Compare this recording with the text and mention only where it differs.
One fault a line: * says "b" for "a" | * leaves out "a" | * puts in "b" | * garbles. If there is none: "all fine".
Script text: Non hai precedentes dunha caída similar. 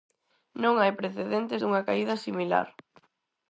all fine